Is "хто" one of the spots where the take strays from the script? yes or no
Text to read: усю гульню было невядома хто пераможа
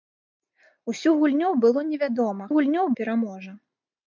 yes